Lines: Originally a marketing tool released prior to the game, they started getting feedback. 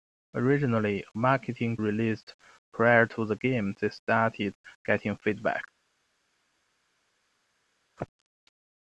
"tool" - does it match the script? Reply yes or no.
no